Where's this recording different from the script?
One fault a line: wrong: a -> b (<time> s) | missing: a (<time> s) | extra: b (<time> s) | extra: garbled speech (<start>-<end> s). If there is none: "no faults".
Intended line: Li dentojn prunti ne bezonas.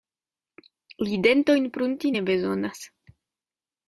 no faults